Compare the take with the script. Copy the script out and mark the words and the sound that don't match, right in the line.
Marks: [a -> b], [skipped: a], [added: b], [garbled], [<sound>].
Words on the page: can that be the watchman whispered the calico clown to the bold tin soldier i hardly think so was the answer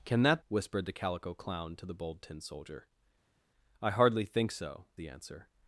can that [skipped: be the watchman] whispered the calico clown to the bold tin soldier i hardly think so [skipped: was] the answer